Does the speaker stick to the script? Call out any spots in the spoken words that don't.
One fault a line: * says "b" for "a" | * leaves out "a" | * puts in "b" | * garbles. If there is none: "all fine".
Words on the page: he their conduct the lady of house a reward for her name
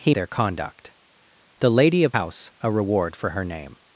all fine